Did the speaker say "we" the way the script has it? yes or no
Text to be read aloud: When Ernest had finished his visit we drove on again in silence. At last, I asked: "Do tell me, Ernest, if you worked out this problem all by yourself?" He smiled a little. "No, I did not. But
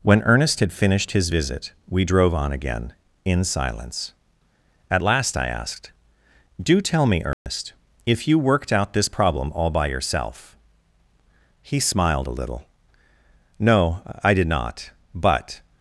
yes